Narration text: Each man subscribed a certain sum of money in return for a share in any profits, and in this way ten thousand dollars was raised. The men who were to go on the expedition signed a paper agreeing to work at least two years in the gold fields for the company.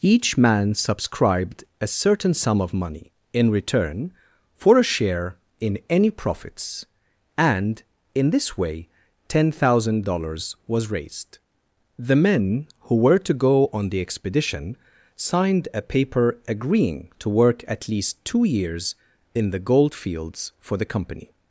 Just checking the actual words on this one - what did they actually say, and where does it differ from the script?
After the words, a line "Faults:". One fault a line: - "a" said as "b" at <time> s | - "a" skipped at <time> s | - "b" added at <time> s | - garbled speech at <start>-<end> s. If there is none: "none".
Each man subscribed a certain sum of money in return for a share in any profits, and in this way ten thousand dollars was raised. The men who were to go on the expedition signed a paper agreeing to work at least two years in the gold fields for the company.
Faults:
none